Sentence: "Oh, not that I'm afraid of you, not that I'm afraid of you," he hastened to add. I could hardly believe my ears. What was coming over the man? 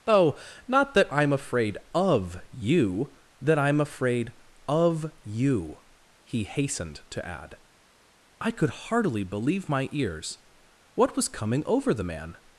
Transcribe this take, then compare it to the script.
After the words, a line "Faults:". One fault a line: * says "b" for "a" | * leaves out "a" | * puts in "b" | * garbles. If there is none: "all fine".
"Oh, not that I'm afraid of you, that I'm afraid of you," he hastened to add. I could hardly believe my ears. What was coming over the man?
Faults:
* leaves out "not"